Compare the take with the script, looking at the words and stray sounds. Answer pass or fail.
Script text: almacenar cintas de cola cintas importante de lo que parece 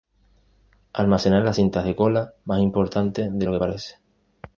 fail